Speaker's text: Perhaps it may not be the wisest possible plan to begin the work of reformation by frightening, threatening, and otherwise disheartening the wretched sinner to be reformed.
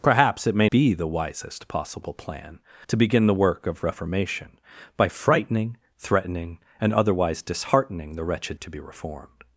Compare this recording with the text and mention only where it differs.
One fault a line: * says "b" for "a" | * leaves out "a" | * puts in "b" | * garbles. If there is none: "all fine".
* leaves out "not"
* leaves out "sinner"